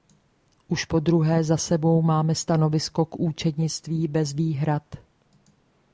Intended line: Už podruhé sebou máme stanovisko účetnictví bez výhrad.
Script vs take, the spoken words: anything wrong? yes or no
yes